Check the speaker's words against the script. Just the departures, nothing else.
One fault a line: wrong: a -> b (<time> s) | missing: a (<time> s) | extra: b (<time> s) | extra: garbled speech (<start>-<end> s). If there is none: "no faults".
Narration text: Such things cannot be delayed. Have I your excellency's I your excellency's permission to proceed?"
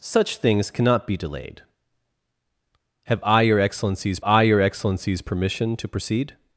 no faults